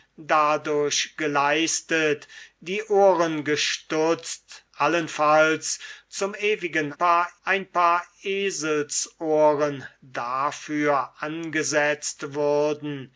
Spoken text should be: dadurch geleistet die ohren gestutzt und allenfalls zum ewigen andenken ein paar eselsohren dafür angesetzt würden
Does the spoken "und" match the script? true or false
false